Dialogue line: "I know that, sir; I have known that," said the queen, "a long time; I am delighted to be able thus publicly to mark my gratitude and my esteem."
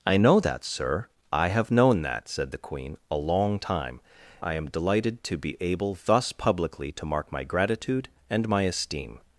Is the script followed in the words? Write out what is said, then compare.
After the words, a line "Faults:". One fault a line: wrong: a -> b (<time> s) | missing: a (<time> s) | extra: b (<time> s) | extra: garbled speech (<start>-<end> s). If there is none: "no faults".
"I know that, sir; I have known that," said the queen, "a long time; I am delighted to be able thus publicly to mark my gratitude and my esteem."
Faults:
no faults